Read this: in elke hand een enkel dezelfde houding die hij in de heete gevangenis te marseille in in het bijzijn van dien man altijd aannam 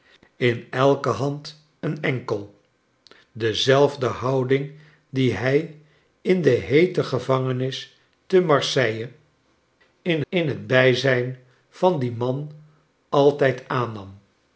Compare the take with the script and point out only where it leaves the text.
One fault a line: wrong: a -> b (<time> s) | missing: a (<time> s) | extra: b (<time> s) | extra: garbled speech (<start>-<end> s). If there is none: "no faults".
no faults